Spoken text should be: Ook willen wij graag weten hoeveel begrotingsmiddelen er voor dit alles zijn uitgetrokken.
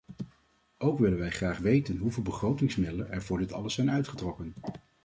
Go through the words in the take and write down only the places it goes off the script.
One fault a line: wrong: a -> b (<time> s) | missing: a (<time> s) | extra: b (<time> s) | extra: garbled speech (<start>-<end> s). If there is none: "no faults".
no faults